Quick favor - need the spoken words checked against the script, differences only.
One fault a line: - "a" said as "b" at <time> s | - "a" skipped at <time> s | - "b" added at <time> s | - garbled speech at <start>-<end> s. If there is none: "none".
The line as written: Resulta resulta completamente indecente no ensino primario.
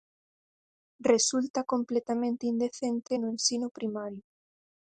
- "resulta" skipped at 1.6 s